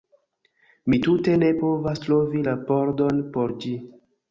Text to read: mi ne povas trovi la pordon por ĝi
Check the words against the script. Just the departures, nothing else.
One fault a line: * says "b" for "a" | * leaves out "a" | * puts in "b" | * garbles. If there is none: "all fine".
* puts in "tute"